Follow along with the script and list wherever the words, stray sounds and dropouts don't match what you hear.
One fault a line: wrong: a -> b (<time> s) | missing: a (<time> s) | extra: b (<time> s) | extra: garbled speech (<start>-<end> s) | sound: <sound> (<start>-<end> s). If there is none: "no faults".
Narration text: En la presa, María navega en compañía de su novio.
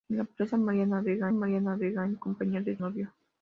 extra: María navega (1.3 s)
missing: su (2.8 s)